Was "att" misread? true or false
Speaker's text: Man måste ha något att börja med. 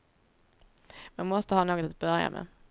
false